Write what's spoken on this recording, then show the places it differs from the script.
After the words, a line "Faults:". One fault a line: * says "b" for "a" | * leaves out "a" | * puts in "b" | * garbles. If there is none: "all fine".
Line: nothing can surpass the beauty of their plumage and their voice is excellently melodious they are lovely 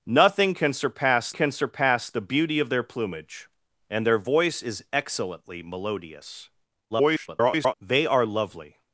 nothing can surpass can surpass the beauty of their plumage and their voice is excellently melodious [garbled] they are lovely
Faults:
* puts in "can surpass"
* garbles